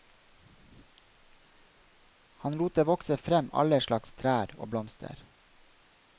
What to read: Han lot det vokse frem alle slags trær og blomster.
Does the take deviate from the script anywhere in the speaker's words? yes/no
no